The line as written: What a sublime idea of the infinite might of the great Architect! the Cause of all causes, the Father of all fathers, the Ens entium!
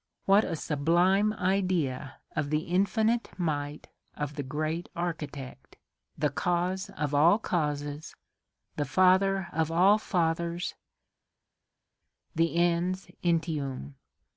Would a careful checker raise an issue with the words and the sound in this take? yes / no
no